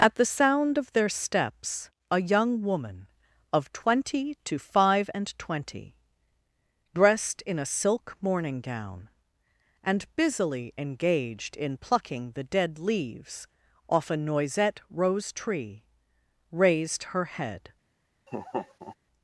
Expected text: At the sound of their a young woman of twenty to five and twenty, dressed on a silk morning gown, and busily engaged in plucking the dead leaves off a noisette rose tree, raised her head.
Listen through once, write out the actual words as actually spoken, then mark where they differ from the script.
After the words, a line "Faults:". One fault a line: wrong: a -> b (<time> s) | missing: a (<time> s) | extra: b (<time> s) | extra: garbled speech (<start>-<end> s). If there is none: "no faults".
At the sound of their steps a young woman of twenty to five and twenty, dressed in a silk morning gown, and busily engaged in plucking the dead leaves off a noisette rose tree, raised her head.
Faults:
extra: steps (1.1 s)
wrong: on -> in (7.4 s)